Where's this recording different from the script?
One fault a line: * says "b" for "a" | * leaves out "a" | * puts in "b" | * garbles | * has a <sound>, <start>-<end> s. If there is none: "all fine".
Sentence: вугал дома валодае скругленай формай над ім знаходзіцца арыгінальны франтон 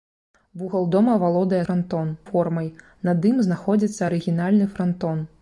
* says "франтон" for "скругленай"